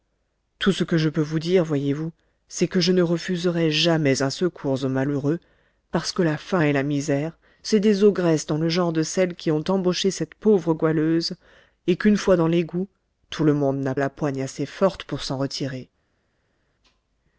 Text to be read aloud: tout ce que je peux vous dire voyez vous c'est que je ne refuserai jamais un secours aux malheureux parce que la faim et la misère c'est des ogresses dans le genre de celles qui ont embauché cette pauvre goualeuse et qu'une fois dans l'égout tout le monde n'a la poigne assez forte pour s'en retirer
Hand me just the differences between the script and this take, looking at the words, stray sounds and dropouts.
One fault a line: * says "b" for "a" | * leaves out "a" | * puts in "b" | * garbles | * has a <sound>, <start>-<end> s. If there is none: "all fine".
all fine